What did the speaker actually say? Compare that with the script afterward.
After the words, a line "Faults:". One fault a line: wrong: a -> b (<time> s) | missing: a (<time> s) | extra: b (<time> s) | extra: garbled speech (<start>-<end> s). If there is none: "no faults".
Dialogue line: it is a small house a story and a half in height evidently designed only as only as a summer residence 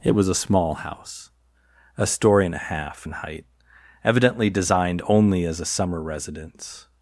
it was a small house a story and a half in height evidently designed only as a summer residence
Faults:
wrong: is -> was (0.1 s)
missing: only as (5.6 s)